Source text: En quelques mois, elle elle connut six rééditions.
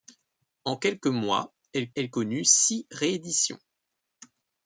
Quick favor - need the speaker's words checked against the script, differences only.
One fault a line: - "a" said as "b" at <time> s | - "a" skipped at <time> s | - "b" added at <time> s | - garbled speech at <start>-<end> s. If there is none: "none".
none